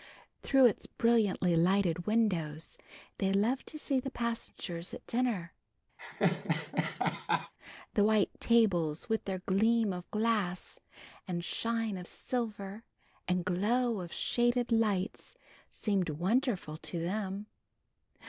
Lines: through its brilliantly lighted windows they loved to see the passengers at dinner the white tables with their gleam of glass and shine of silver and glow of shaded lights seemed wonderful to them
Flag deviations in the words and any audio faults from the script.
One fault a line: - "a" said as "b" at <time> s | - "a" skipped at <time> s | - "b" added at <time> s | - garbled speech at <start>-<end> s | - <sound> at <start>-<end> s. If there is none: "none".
- laugh at 6.0-7.5 s